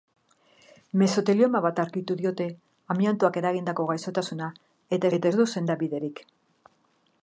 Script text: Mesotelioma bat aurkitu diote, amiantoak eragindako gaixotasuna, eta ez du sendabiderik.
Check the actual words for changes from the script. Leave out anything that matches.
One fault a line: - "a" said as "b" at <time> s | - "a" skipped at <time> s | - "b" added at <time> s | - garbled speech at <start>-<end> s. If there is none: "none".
- "eta" added at 5.2 s